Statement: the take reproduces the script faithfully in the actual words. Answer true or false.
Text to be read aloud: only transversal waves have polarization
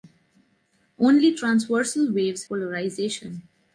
false